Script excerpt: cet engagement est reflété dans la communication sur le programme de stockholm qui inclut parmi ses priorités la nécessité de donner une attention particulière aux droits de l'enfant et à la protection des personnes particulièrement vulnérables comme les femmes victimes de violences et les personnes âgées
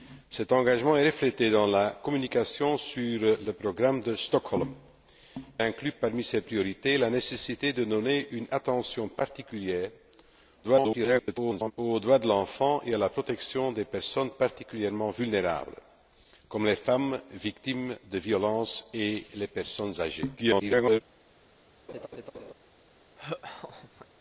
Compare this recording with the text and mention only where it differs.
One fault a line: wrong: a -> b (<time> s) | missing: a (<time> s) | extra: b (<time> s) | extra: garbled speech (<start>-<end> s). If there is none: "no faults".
missing: qui (4.7 s)
extra: garbled speech (10.6-11.7 s)
extra: garbled speech (20.4-21.0 s)